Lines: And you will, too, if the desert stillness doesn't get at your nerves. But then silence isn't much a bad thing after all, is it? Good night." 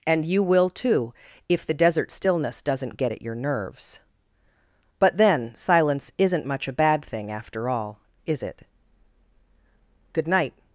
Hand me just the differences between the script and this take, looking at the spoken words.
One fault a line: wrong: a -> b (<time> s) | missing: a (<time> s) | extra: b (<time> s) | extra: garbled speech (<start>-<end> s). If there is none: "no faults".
no faults